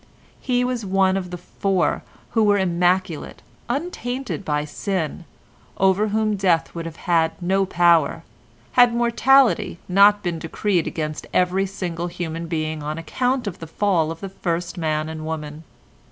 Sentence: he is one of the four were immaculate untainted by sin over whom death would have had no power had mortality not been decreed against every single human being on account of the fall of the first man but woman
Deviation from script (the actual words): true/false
true